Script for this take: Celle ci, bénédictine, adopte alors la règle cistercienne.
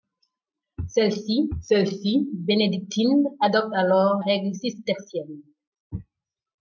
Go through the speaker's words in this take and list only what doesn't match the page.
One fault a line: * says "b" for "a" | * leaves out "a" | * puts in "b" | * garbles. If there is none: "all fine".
* puts in "celle ci"
* leaves out "la"